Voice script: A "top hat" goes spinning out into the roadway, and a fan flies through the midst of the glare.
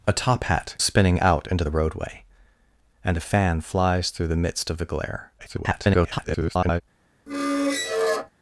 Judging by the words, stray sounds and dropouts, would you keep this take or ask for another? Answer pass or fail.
fail